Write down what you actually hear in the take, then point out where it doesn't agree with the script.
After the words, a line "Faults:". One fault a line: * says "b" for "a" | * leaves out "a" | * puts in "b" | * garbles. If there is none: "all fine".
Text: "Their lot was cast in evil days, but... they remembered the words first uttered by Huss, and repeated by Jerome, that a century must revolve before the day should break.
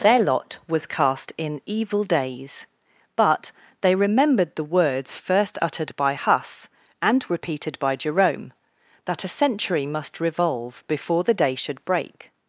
"Their lot was cast in evil days, but... they remembered the words first uttered by Huss, and repeated by Jerome, that a century must revolve before the day should break.
Faults:
all fine